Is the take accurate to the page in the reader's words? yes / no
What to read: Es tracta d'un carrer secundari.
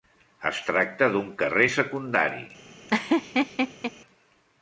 yes